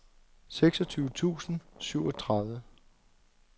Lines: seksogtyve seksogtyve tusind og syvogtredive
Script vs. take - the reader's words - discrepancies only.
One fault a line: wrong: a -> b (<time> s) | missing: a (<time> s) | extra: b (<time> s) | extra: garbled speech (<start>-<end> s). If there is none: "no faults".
missing: seksogtyve (1.1 s)